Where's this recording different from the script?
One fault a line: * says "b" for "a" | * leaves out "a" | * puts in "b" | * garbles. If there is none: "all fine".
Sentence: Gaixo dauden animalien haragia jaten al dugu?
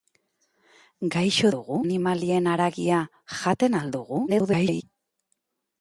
* says "dugu" for "dauden"
* garbles